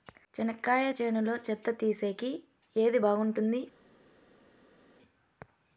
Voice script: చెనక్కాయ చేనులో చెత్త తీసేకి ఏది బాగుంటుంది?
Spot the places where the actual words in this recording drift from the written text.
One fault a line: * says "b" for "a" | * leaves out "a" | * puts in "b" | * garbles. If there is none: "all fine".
all fine